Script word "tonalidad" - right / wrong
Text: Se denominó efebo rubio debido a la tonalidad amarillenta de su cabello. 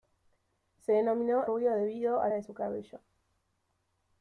wrong